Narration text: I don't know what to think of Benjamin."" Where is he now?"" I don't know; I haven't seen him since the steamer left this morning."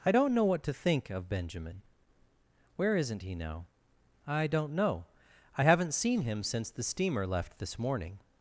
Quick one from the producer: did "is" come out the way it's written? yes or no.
no